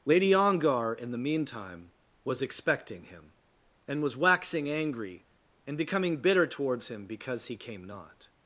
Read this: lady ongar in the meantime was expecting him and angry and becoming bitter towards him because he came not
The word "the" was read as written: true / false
true